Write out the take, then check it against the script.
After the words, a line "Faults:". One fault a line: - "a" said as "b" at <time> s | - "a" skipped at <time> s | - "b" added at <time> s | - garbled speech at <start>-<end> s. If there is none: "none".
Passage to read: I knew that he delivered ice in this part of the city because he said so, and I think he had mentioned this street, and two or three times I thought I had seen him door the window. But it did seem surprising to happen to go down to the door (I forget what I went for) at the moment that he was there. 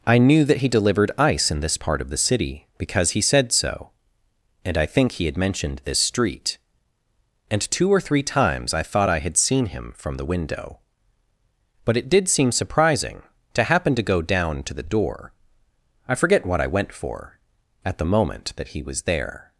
I knew that he delivered ice in this part of the city because he said so, and I think he had mentioned this street, and two or three times I thought I had seen him from the window. But it did seem surprising to happen to go down to the door (I forget what I went for) at the moment that he was there.
Faults:
- "door" said as "from" at 10.0 s